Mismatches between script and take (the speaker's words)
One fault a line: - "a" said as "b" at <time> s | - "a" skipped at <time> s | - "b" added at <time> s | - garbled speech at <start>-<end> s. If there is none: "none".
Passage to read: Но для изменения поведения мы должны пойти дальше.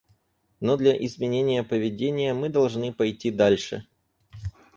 none